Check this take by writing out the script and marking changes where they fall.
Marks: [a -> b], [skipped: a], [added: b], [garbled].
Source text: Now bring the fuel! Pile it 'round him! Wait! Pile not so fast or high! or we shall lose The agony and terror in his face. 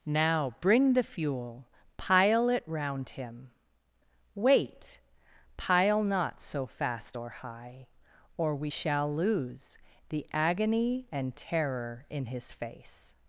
Now bring the fuel! Pile it 'round him! Wait! Pile not so fast or high! or we shall lose The agony and terror in his face.